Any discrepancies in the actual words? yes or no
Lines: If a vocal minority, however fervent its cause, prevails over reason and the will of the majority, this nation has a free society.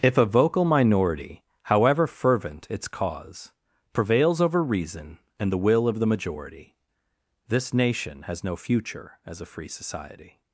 yes